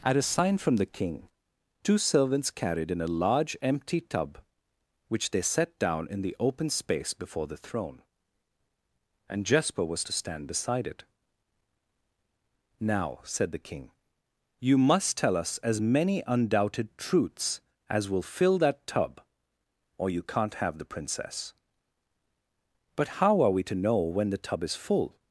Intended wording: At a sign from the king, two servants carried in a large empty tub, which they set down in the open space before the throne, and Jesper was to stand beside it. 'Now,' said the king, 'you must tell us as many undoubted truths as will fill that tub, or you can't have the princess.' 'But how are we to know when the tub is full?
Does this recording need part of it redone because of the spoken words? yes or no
no